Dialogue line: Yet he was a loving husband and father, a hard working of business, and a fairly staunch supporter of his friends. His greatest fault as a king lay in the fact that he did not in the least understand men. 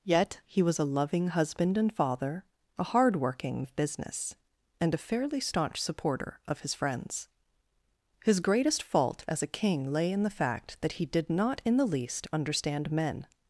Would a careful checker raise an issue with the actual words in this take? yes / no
no